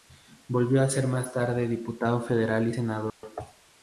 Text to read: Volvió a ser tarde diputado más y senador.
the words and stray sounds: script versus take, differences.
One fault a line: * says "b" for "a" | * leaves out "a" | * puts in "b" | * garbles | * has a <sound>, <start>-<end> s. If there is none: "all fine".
* puts in "más"
* says "federal" for "más"
* has a dropout, 3.1-3.2 s